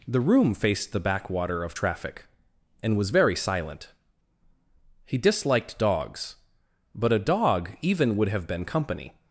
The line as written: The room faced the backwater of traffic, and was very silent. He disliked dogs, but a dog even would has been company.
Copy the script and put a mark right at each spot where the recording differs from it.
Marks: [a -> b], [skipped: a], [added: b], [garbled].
The room faced the backwater of traffic, and was very silent. He disliked dogs, but a dog even would [has -> have] been company.